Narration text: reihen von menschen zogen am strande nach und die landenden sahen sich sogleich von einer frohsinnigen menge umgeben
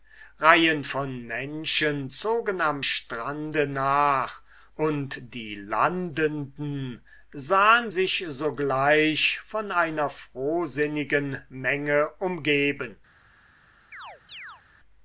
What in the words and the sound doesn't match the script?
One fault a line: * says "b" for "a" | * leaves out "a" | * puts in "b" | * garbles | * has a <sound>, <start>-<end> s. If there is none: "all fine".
* has a chirp, 13.9-14.6 s